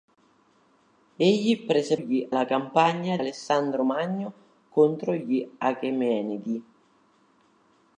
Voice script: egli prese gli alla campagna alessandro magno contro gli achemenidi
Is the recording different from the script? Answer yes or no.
no